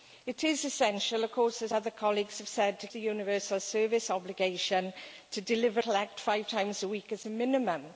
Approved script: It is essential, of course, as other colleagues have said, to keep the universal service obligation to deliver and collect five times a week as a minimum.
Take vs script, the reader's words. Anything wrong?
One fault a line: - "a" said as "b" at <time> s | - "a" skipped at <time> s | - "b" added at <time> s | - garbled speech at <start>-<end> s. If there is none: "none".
- "keep" skipped at 2.9 s
- "and" skipped at 5.8 s